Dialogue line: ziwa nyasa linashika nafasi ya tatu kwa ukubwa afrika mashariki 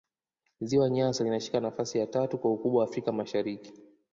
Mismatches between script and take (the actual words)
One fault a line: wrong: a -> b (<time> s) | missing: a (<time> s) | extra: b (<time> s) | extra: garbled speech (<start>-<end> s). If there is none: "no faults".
no faults